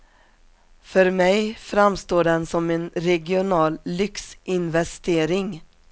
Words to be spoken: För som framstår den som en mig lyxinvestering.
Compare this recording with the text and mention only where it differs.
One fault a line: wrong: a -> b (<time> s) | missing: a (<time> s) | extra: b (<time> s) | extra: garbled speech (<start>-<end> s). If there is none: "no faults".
wrong: som -> mig (1.1 s)
wrong: mig -> regional (2.9 s)